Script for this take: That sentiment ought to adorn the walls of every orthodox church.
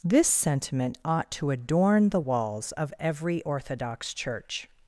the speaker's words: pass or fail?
fail